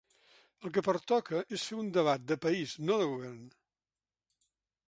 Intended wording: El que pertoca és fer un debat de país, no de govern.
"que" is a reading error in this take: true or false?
false